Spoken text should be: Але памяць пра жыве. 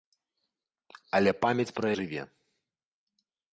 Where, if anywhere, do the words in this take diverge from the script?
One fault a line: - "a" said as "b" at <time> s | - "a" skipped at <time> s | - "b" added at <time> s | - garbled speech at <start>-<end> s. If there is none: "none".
none